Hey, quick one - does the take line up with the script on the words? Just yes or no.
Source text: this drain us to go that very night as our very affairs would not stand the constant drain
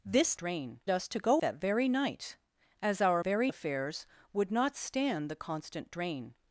yes